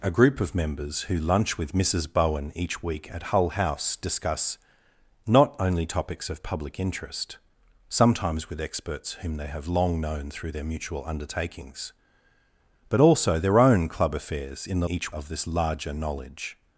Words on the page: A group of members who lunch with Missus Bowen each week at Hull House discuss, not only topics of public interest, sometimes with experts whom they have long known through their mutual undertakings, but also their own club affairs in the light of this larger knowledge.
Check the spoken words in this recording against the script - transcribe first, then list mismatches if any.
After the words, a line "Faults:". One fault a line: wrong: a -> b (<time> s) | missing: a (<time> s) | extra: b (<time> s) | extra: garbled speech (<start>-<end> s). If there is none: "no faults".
A group of members who lunch with Missus Bowen each week at Hull House discuss, not only topics of public interest, sometimes with experts whom they have long known through their mutual undertakings, but also their own club affairs in the each of this larger knowledge.
Faults:
wrong: light -> each (14.9 s)